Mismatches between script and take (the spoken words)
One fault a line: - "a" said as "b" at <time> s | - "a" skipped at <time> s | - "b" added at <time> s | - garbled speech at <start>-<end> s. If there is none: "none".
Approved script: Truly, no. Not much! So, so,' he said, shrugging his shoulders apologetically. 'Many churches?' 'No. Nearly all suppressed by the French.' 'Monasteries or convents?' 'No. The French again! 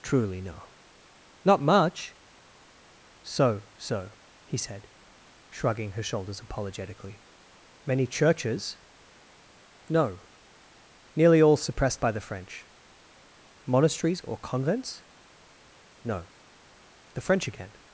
- "his" said as "her" at 5.9 s